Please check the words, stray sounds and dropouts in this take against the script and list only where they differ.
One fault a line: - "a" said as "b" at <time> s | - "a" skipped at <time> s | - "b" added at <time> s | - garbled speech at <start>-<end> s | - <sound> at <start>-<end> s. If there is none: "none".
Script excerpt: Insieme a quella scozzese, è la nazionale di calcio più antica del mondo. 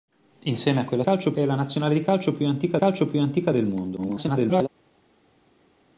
- "scozzese" said as "calcio" at 1.0 s
- "calcio più antica" added at 2.8 s
- garbled speech at 4.0-4.7 s